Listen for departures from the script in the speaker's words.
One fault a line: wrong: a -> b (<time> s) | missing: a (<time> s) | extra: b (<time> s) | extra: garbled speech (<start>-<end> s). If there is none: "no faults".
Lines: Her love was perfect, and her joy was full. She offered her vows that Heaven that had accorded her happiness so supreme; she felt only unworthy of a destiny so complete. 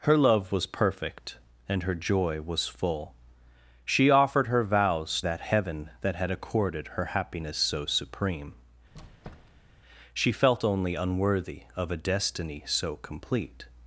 no faults